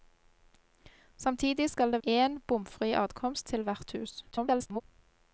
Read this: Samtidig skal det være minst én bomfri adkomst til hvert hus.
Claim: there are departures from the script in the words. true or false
true